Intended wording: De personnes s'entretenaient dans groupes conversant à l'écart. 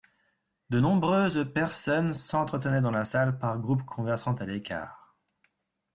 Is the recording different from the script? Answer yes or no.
yes